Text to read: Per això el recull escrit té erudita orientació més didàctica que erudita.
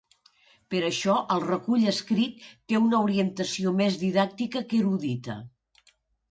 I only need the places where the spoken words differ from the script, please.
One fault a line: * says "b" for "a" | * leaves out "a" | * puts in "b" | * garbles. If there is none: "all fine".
* says "una" for "erudita"